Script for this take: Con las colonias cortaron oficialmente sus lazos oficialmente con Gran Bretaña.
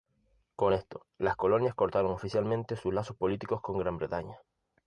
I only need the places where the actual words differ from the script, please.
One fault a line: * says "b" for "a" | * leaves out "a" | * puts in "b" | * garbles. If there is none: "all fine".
* puts in "esto"
* says "políticos" for "oficialmente"